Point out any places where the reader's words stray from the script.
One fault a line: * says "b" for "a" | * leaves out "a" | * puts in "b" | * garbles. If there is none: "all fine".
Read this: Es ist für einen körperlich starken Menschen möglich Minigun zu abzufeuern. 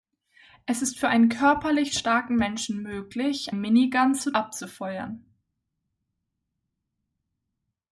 all fine